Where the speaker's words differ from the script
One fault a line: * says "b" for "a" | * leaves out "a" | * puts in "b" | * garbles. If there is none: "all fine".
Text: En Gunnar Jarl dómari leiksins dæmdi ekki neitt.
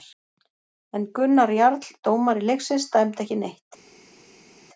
all fine